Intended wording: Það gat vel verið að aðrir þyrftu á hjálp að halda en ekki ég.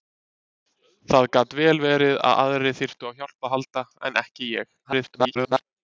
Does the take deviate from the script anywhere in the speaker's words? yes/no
yes